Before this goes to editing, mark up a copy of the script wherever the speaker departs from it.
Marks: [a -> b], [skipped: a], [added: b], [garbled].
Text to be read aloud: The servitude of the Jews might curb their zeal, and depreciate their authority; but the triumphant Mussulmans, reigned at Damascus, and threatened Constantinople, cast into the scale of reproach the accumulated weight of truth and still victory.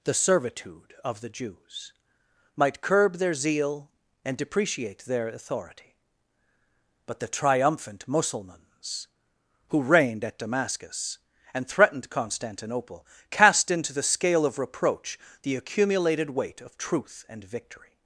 The servitude of the Jews might curb their zeal, and depreciate their authority; but the triumphant Mussulmans, [added: who] reigned at Damascus, and threatened Constantinople, cast into the scale of reproach the accumulated weight of truth and [skipped: still] victory.